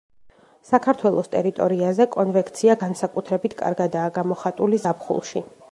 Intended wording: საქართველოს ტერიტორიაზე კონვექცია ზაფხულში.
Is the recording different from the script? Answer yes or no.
yes